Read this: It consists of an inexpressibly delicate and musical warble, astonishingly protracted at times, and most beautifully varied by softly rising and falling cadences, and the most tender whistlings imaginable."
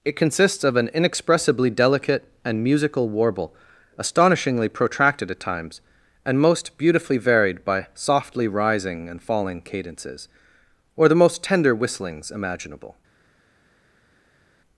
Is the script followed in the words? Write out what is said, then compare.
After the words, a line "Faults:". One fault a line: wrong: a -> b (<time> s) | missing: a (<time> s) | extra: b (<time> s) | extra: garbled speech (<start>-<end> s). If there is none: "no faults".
It consists of an inexpressibly delicate and musical warble, astonishingly protracted at times, and most beautifully varied by softly rising and falling cadences, or the most tender whistlings imaginable."
Faults:
wrong: and -> or (10.9 s)